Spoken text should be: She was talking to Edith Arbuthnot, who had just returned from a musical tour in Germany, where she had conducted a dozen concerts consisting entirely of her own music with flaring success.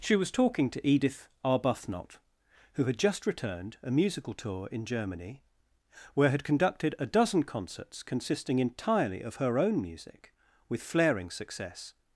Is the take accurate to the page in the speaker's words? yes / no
no